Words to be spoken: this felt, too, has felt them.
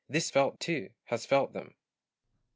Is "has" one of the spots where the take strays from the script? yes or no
no